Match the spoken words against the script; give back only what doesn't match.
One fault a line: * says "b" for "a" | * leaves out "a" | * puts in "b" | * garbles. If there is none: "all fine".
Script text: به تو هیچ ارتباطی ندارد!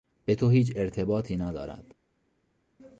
all fine